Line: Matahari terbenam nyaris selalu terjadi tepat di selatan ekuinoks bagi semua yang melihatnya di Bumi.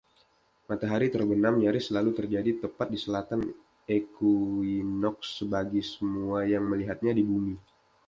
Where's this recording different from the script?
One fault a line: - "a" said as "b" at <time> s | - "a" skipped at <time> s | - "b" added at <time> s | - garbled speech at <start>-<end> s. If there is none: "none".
none